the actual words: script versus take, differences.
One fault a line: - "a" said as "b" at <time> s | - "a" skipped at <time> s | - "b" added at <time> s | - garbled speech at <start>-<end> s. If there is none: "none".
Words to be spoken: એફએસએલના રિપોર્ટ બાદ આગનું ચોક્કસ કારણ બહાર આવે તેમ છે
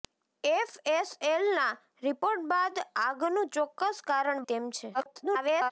- "બહાર આવે" skipped at 4.5 s
- garbled speech at 4.9-5.7 s